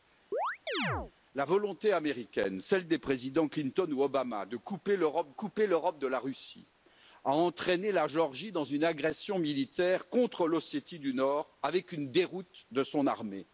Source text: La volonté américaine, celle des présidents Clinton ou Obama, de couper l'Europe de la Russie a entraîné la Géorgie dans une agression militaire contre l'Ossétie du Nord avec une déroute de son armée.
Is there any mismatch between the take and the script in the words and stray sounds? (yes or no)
yes